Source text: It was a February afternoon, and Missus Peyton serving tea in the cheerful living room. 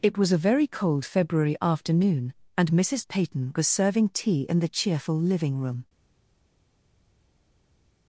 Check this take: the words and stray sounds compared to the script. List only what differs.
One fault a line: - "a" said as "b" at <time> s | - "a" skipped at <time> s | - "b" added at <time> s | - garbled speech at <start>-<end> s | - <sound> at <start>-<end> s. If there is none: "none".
- "very cold" added at 0.4 s
- "was" added at 3.5 s